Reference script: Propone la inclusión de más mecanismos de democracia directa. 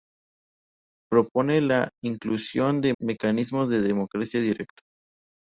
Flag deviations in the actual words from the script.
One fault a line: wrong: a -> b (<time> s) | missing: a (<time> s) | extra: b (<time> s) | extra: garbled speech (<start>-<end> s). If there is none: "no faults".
missing: más (3.0 s)